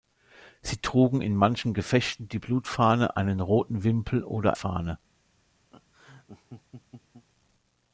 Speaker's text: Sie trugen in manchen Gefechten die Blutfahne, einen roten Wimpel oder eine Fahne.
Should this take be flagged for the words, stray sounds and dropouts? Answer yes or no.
yes